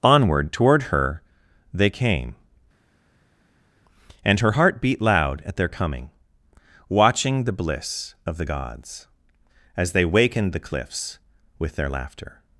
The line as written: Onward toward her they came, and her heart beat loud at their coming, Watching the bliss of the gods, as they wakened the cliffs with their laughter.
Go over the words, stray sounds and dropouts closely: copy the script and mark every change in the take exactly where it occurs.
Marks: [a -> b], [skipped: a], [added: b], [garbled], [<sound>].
Onward toward her they came, and her heart beat loud at their coming, Watching the bliss of the gods, as they wakened the cliffs with their laughter.